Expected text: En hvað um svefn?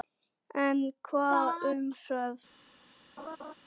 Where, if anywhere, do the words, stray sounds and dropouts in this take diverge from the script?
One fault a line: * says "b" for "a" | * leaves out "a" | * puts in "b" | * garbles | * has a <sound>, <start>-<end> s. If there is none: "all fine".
* has a laugh, 3.2-3.5 s